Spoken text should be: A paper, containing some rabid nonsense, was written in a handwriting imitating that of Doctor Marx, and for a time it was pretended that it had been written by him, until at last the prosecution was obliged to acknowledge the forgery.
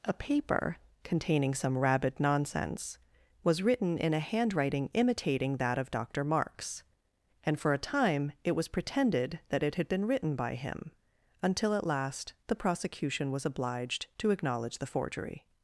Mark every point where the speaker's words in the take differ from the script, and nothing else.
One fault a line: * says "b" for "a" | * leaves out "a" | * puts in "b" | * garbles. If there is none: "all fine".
all fine